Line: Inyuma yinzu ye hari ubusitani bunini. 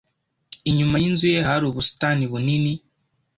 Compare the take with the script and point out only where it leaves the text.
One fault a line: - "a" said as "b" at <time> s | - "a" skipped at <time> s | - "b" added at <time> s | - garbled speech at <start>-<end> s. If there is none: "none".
none